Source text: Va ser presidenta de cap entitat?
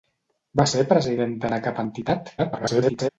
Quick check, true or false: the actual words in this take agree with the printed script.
false